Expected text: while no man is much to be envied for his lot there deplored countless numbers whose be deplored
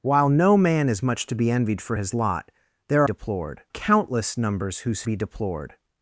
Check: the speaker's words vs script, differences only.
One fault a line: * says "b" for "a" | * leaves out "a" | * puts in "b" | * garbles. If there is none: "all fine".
all fine